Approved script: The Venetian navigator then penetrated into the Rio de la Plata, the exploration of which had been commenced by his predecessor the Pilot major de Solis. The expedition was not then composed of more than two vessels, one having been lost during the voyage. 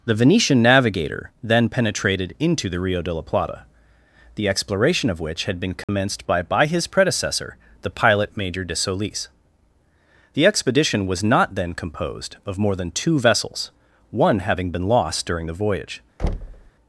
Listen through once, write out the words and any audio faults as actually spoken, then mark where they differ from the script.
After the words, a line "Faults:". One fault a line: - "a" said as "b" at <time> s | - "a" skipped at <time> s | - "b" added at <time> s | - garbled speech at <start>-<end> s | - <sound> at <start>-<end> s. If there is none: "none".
The Venetian navigator then penetrated into the Rio de la Plata, the exploration of which had been commenced by by his predecessor the Pilot major de Solis. The expedition was not then composed of more than two vessels, one having been lost during the voyage.
Faults:
- dropout at 5.8-5.9 s
- "by" added at 6.4 s
- thud at 16.2-16.7 s